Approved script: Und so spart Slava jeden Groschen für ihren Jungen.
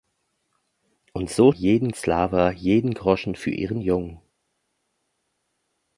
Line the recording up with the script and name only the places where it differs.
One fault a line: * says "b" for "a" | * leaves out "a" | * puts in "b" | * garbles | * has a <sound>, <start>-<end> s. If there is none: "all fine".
* says "jeden" for "spart"